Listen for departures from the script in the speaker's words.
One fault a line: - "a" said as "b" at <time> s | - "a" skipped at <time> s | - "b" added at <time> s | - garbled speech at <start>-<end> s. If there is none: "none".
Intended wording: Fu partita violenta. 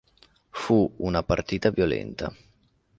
- "una" added at 1.0 s